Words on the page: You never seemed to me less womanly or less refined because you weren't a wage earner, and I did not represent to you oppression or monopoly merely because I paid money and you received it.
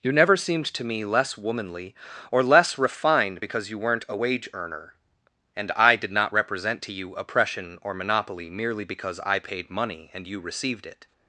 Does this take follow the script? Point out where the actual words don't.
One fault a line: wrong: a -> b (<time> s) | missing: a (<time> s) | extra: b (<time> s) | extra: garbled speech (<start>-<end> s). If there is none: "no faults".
no faults